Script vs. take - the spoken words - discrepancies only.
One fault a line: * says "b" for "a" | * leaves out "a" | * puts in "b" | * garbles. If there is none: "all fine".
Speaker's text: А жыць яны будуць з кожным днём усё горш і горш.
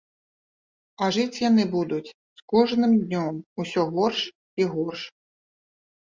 all fine